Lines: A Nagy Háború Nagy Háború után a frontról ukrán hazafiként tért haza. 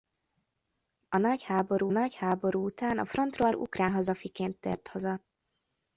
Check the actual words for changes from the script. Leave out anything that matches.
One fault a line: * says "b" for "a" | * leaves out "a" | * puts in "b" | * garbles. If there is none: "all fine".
all fine